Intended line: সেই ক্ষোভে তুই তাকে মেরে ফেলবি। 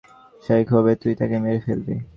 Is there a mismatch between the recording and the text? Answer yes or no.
no